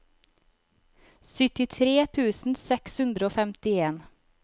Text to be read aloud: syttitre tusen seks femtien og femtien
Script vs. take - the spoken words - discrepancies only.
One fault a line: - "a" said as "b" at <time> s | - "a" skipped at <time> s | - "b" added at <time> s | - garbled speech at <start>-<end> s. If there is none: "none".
- "femtien" said as "hundre" at 3.0 s